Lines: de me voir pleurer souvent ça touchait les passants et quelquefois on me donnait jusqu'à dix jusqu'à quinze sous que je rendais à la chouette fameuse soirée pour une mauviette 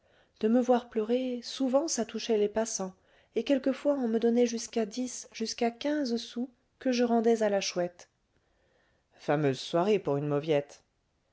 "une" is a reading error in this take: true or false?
false